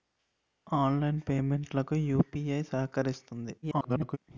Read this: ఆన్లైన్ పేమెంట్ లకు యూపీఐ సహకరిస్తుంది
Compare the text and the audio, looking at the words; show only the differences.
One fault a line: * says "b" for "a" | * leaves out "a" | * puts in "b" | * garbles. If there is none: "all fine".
* garbles